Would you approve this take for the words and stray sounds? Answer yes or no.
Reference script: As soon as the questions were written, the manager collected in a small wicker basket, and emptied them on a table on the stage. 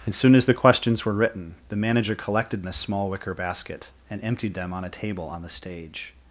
yes